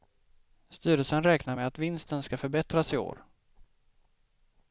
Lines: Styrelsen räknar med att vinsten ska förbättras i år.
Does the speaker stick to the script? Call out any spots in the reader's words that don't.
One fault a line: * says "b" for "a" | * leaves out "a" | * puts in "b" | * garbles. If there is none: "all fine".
all fine